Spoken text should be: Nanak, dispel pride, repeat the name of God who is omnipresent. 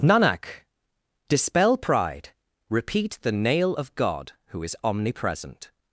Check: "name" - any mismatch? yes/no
yes